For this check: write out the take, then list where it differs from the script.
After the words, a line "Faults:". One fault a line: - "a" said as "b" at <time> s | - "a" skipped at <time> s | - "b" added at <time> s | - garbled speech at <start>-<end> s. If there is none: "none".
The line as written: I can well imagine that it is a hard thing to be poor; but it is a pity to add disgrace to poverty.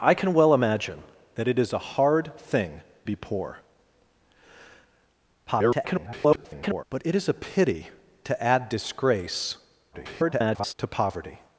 I can well imagine that it is a hard thing be poor; [garbled] but it is a pity to add disgrace [garbled] to poverty.
Faults:
- "to" skipped at 2.8 s
- garbled speech at 5.5-6.8 s
- garbled speech at 9.9-10.7 s